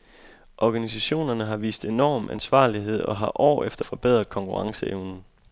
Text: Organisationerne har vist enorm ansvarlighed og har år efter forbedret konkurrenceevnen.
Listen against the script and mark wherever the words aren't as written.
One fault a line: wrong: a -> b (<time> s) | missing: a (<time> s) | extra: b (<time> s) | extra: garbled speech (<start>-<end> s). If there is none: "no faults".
no faults